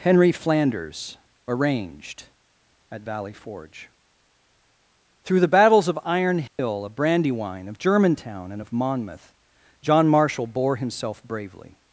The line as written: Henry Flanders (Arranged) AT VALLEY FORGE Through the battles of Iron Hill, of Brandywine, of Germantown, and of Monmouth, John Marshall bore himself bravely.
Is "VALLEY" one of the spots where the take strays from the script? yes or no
no